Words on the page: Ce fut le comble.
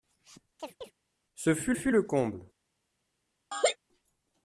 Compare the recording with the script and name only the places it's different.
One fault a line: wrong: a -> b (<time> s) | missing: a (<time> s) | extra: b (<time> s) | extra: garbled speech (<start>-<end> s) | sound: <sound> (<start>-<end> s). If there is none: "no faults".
sound: chirp (0.6-0.9 s)
extra: fut (1.7 s)
sound: laugh (3.5-3.8 s)